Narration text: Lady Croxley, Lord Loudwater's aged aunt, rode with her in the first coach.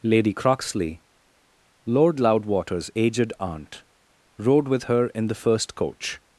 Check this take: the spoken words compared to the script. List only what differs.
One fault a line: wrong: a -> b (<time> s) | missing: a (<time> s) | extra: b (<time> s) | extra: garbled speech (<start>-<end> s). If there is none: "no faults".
no faults